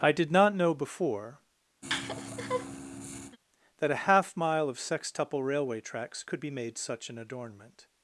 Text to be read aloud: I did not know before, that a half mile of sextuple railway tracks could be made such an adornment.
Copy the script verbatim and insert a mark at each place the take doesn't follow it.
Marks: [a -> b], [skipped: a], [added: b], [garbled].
I did not know before, that a half mile of sextuple railway tracks could be made such an adornment.